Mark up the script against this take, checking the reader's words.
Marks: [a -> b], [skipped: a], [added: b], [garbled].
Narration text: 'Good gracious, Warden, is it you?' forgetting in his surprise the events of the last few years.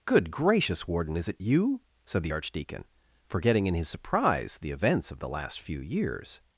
'Good gracious, Warden, is it you?' [added: said the archdeacon] forgetting in his surprise the events of the last few years.